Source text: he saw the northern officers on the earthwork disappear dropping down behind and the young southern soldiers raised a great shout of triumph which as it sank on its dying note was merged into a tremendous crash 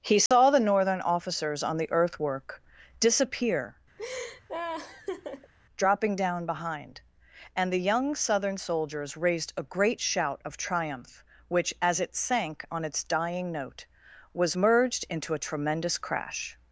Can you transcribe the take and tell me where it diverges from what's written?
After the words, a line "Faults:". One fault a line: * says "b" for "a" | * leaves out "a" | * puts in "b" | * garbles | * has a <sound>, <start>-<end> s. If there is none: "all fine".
he saw the northern officers on the earthwork disappear dropping down behind and the young southern soldiers raised a great shout of triumph which as it sank on its dying note was merged into a tremendous crash
Faults:
* has a dropout, 0.3-0.3 s
* has a laugh, 4.0-5.5 s